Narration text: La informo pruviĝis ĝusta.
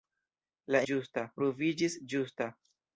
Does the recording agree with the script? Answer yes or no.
no